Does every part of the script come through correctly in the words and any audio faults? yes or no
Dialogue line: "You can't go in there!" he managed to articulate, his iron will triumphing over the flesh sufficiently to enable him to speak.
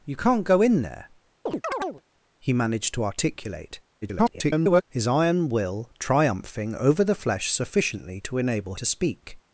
no